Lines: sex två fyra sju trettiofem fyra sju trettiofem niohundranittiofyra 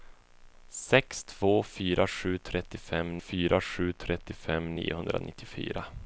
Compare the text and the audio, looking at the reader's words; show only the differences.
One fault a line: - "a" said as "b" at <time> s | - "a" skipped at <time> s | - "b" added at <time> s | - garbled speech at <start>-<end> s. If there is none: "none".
none